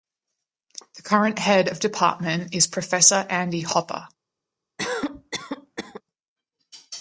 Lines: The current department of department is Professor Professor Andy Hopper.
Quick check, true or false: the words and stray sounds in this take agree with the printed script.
false